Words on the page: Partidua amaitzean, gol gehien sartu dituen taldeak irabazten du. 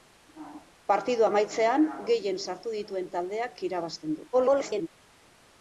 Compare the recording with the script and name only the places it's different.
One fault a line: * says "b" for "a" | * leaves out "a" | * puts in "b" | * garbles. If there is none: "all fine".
* leaves out "gol"
* garbles